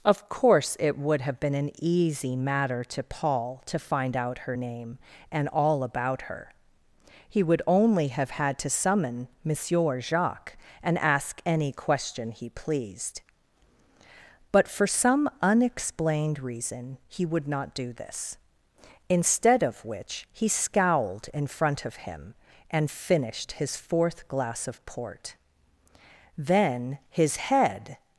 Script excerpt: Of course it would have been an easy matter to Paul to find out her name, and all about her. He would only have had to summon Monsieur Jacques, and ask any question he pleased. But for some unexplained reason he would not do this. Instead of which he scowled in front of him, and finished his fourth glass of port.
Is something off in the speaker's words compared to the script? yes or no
yes